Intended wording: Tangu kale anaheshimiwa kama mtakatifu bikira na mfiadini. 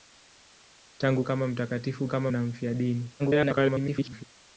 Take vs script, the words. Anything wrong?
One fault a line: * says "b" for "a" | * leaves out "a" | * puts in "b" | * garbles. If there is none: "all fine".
* leaves out "kale anaheshimiwa"
* says "kama" for "bikira"
* garbles